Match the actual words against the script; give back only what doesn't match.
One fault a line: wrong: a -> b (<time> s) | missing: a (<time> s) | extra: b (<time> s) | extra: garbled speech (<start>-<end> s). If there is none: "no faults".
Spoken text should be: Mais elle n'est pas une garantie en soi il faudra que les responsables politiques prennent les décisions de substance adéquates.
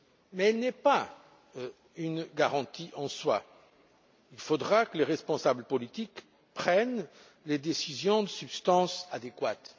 no faults